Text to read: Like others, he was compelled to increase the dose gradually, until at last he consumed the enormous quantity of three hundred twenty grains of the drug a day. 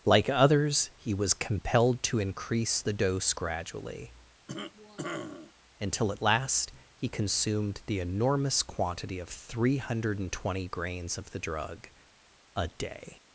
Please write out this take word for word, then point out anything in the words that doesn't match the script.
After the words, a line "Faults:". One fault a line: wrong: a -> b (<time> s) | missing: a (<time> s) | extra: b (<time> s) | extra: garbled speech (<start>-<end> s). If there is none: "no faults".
Like others, he was compelled to increase the dose gradually, until at last he consumed the enormous quantity of three hundred twenty grains of the drug a day.
Faults:
no faults